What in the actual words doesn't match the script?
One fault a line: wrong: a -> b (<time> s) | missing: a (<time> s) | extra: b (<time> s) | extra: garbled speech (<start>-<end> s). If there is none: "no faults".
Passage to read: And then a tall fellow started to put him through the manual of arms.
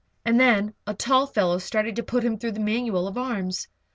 no faults